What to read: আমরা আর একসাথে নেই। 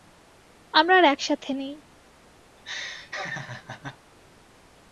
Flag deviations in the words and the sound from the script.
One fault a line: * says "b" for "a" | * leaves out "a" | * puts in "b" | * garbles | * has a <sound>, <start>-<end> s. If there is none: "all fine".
* has a laugh, 2.6-4.0 s